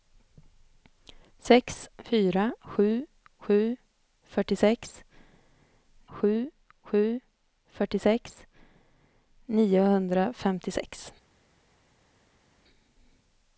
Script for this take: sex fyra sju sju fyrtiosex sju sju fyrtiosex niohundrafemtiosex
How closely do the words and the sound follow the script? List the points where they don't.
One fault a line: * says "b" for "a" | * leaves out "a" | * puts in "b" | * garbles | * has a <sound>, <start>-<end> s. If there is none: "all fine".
all fine